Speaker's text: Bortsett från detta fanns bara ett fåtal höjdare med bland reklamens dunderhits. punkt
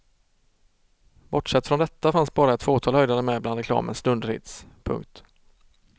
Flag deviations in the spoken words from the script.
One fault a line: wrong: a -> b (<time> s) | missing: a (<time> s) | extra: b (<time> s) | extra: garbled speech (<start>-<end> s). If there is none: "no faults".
no faults